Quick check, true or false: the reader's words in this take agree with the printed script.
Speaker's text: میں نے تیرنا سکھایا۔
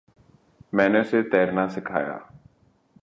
false